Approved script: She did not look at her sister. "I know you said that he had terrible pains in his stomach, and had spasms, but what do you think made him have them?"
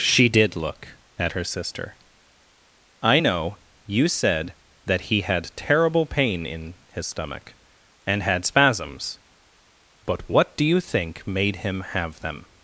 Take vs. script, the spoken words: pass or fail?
fail